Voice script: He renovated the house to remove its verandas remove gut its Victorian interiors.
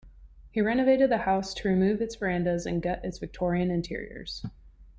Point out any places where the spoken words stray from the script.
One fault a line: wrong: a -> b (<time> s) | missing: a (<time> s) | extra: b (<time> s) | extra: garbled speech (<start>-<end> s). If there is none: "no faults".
wrong: remove -> and (2.6 s)